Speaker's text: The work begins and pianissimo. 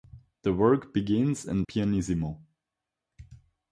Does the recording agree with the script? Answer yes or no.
yes